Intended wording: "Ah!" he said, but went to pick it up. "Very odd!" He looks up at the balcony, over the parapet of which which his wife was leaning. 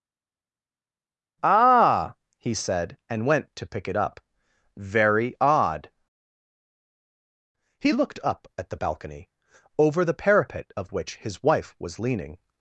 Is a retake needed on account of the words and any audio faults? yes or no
yes